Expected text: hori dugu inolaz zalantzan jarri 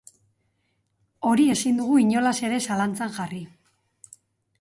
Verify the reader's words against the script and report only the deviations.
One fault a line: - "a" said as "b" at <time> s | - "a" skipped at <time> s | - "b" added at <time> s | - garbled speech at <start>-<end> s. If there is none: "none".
- "ezin" added at 1.5 s
- "ere" added at 2.5 s